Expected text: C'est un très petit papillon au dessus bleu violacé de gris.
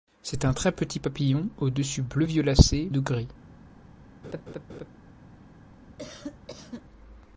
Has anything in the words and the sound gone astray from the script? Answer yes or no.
yes